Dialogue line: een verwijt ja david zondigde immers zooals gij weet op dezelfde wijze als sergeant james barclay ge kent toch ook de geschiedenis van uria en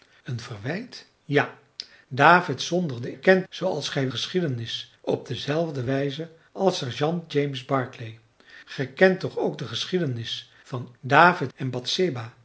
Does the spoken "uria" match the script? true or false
false